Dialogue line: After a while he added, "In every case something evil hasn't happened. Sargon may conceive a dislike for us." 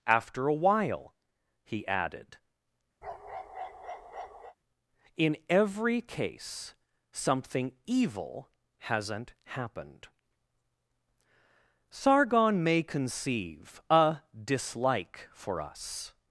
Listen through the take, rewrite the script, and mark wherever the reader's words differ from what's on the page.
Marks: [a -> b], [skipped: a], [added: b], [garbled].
After a while he added, "In every case something evil hasn't happened. Sargon may conceive a dislike for us."